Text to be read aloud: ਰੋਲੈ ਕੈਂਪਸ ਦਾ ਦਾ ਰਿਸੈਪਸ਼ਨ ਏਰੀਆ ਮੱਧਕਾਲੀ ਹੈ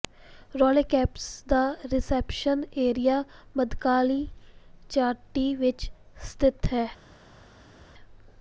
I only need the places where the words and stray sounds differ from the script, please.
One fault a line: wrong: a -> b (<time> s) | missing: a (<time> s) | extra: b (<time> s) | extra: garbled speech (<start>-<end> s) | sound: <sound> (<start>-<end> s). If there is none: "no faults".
missing: ਦਾ (1.6 s)
extra: ਚਾਟੀ ਵਿਚ ਸਥਿਤ (4.9 s)